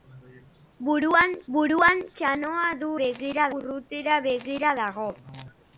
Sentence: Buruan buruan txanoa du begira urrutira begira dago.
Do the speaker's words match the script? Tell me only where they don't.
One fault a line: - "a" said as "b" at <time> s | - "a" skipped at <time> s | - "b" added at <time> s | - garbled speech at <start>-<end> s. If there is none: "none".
none